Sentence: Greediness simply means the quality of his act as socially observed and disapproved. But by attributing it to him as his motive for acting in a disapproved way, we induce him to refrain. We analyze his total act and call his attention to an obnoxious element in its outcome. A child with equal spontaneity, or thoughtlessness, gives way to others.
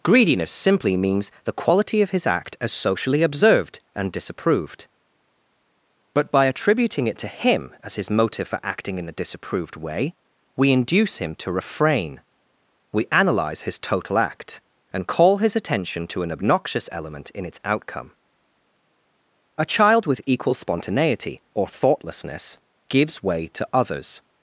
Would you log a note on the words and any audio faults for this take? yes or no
no